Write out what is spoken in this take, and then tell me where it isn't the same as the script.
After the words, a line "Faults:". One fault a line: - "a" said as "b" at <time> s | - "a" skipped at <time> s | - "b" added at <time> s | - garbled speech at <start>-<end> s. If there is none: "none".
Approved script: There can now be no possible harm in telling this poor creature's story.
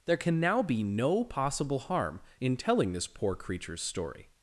There can now be no possible harm in telling this poor creature's story.
Faults:
none